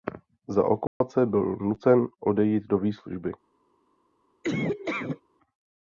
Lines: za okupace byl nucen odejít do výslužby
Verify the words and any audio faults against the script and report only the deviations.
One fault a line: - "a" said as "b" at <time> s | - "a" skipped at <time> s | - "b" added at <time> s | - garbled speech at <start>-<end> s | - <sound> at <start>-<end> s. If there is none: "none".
- dropout at 0.9-1.0 s
- laugh at 4.4-5.2 s